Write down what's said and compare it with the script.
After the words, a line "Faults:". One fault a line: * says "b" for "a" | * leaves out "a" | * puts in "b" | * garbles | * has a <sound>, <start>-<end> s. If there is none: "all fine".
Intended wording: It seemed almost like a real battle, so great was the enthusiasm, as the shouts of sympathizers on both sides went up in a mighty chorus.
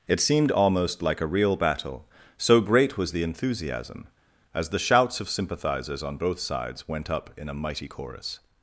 It seemed almost like a real battle, so great was the enthusiasm, as the shouts of sympathizers on both sides went up in a mighty chorus.
Faults:
all fine